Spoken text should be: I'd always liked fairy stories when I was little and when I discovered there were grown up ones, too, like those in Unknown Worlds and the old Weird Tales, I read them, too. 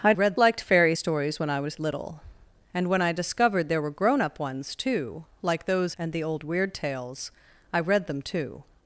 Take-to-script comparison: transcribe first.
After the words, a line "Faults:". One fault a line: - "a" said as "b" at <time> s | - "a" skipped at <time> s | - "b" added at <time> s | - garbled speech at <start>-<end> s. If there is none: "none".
I'd read liked fairy stories when I was little and when I discovered there were grown up ones, too, like those and the old Weird Tales, I read them, too.
Faults:
- "always" said as "read" at 0.1 s
- "in Unknown Worlds" skipped at 5.9 s